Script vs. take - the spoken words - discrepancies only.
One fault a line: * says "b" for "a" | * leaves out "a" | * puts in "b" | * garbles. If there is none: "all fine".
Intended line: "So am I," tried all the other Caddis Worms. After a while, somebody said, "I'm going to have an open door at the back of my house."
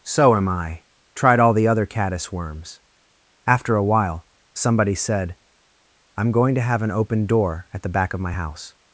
all fine